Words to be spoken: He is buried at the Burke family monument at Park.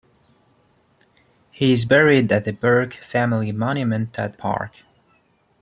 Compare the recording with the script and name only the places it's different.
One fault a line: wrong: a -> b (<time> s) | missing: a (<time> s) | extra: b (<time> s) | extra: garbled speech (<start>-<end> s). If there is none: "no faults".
no faults